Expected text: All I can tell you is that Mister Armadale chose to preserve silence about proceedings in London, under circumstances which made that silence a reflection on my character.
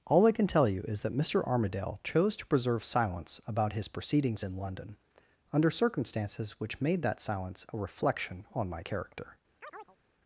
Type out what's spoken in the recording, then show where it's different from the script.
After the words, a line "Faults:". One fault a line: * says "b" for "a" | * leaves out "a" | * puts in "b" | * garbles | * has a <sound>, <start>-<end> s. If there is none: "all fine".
All I can tell you is that Mister Armadale chose to preserve silence about his proceedings in London, under circumstances which made that silence a reflection on my character.
Faults:
* puts in "his"
* has a chirp, 9.6-10.0 s